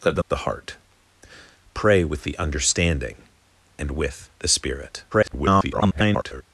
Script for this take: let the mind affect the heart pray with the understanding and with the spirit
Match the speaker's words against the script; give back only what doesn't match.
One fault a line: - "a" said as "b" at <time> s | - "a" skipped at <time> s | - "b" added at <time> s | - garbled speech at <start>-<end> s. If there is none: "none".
- "mind affect" skipped at 0.2 s
- garbled speech at 5.1-6.4 s